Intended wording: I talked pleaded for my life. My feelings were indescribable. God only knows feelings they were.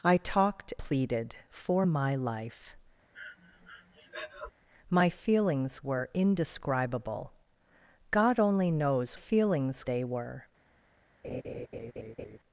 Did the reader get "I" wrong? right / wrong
right